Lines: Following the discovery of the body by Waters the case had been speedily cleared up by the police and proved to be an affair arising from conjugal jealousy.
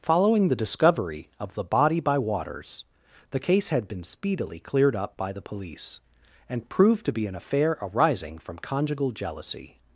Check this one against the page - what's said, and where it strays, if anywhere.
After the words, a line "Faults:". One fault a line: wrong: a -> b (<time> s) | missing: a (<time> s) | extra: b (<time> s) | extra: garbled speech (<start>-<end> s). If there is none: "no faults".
Following the discovery of the body by Waters the case had been speedily cleared up by the police and proved to be an affair arising from conjugal jealousy.
Faults:
no faults